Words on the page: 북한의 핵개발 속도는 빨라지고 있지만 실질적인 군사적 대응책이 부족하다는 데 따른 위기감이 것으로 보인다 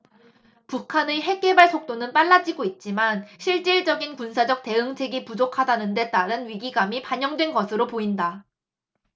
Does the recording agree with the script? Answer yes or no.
no